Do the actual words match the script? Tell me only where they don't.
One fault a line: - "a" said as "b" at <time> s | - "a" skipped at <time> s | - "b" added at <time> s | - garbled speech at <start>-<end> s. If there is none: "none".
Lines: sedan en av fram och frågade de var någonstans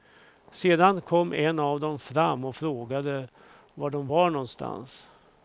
- "kom" added at 1.0 s
- "dem" added at 1.8 s
- "var" added at 3.7 s